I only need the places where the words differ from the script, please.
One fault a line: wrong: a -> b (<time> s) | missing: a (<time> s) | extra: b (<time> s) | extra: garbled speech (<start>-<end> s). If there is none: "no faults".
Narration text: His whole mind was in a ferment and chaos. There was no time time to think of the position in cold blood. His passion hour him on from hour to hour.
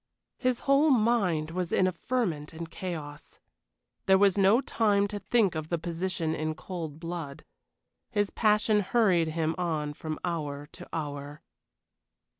missing: time (5.1 s)
wrong: hour -> hurried (8.8 s)